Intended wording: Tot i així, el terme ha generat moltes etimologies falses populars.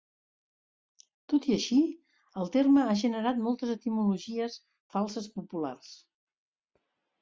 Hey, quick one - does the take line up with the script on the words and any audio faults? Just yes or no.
yes